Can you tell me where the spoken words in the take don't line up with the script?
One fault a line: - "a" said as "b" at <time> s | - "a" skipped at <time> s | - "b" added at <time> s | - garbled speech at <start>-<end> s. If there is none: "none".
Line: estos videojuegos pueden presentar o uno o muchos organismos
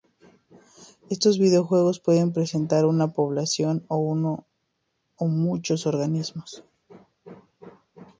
- "una población" added at 2.9 s